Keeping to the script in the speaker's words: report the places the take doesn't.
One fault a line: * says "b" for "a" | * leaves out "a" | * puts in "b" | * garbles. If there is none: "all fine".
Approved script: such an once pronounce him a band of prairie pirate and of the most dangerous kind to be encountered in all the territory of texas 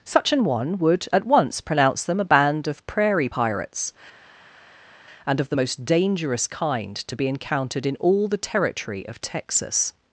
* puts in "one would at"
* says "them" for "him"
* says "pirates" for "pirate"